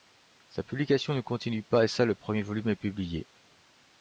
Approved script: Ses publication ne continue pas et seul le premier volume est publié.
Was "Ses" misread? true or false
true